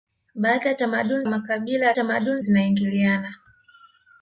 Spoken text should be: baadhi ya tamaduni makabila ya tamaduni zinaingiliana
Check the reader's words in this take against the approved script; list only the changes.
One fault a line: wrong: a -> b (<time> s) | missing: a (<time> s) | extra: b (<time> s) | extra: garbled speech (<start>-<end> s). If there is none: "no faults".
no faults